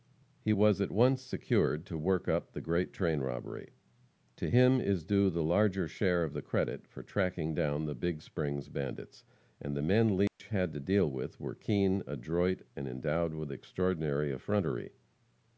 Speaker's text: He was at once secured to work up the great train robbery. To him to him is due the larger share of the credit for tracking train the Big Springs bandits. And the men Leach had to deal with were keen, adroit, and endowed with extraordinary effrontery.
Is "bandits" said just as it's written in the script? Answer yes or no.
yes